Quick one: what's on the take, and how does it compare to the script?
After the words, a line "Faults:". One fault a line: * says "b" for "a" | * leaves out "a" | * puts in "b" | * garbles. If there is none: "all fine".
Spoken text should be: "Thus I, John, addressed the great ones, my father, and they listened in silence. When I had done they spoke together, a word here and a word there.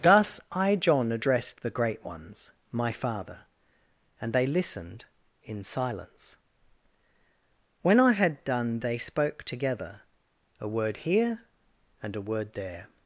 "Thus I, John, addressed the great ones, my father, and they listened in silence. When I had done they spoke together, a word here and a word there.
Faults:
all fine